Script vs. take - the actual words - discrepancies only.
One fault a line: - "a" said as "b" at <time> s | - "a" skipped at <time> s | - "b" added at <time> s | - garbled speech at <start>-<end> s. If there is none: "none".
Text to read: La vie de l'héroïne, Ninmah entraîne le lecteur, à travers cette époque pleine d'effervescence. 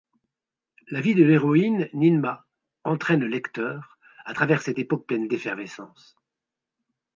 none